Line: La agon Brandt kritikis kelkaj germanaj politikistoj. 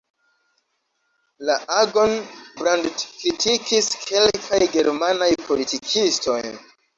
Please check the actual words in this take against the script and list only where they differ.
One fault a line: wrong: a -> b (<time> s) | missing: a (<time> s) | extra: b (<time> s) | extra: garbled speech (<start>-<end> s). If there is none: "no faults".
no faults